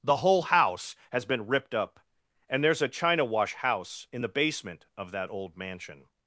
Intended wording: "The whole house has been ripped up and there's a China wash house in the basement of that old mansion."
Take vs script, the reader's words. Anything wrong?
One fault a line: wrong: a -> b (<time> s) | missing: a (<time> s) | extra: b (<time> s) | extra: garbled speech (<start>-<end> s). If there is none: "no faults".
no faults